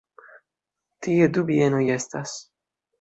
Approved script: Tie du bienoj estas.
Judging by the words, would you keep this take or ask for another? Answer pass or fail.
pass